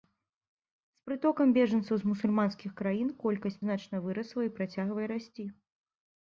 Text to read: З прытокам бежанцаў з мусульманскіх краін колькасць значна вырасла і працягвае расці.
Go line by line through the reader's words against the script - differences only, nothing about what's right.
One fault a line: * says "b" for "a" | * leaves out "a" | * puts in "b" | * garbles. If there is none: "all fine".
all fine